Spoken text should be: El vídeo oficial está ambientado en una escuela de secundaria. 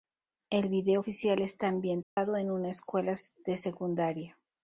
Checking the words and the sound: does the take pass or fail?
fail